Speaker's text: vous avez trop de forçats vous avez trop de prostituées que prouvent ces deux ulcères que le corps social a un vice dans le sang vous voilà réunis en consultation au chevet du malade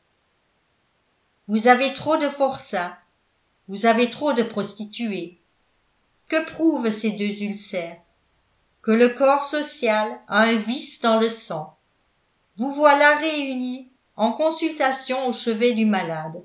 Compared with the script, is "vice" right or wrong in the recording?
right